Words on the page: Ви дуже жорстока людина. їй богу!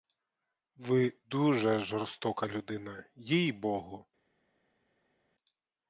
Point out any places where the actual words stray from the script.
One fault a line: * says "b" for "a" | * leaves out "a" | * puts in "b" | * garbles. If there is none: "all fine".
all fine